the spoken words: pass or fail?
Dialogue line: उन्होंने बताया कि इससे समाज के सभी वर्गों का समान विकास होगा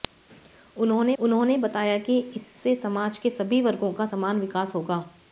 fail